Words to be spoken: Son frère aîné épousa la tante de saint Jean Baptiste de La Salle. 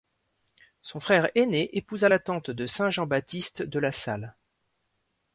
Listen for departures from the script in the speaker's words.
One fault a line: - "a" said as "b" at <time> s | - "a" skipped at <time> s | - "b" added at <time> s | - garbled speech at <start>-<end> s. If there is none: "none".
none